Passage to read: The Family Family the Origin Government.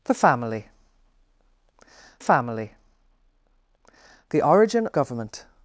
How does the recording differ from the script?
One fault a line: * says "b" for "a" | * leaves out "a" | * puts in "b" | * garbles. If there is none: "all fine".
all fine